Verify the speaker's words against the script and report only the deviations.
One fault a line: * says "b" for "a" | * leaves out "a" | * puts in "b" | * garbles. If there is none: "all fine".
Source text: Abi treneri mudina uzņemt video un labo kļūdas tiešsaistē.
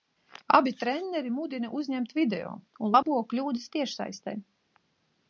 all fine